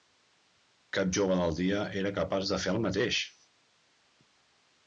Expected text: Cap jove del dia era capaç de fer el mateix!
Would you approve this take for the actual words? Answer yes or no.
yes